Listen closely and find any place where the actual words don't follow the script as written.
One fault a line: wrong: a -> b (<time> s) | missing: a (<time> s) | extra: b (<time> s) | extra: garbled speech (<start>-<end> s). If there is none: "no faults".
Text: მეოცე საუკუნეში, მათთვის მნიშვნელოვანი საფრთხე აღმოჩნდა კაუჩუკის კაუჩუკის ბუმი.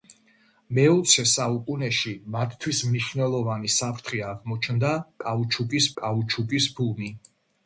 no faults